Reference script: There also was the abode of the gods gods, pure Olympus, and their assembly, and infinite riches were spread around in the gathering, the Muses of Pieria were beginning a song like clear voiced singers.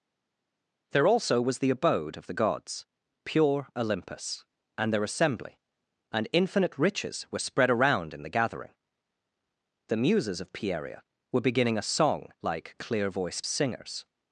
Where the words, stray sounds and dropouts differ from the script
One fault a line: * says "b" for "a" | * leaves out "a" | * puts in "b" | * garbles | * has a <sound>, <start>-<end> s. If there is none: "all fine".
* leaves out "gods"